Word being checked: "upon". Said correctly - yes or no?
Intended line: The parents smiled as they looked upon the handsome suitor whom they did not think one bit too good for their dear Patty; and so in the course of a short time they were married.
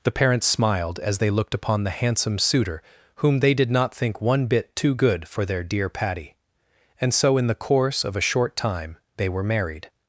yes